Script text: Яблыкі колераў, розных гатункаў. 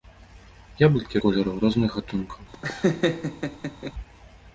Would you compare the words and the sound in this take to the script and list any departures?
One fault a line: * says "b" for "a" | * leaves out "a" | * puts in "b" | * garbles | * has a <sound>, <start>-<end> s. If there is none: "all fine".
* has a laugh, 2.5-3.9 s